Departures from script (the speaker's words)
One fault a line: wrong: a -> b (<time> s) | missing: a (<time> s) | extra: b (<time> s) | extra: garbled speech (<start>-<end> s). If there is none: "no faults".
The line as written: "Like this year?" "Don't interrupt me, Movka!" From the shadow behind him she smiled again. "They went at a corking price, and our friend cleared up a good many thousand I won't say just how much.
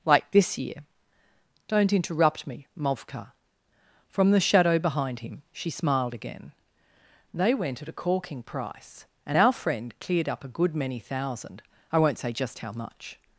no faults